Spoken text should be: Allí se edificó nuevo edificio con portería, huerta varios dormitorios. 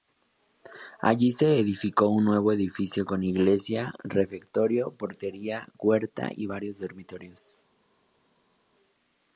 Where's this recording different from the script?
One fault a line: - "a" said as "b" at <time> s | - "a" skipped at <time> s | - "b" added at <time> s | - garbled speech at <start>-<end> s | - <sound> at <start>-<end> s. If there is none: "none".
- "un" added at 2.1 s
- "iglesia refectorio" added at 3.2 s
- "y" added at 6.3 s